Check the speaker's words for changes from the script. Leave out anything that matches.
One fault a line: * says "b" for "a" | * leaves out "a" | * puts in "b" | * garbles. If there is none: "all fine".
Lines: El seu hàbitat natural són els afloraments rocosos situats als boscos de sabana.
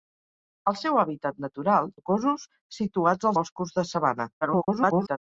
* leaves out "són els afloraments"
* leaves out "als"
* garbles